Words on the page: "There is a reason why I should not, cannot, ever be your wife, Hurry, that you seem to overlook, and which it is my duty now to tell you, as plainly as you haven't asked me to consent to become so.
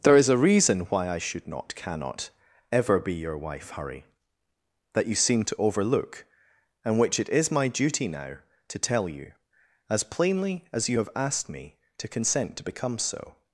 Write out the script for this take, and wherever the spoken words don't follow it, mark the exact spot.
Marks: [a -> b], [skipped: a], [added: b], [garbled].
"There is a reason why I should not, cannot, ever be your wife, Hurry, that you seem to overlook, and which it is my duty now to tell you, as plainly as you [haven't -> have] asked me to consent to become so.